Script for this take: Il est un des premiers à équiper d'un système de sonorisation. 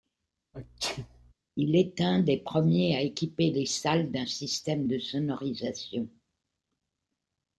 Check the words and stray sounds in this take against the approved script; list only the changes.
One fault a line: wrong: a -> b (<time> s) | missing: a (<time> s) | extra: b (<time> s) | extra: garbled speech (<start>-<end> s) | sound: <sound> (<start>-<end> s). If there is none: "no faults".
sound: sneeze (0.5-1.3 s)
extra: les salles (3.5 s)